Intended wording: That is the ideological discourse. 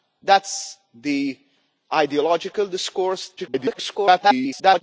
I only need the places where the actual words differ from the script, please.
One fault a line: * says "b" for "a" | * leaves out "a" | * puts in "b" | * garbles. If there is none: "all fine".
* garbles